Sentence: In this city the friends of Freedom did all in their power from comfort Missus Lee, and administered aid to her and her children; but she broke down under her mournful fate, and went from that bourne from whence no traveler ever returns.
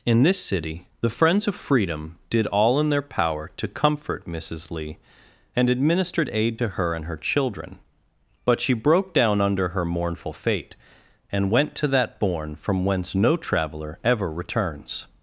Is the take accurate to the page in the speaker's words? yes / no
no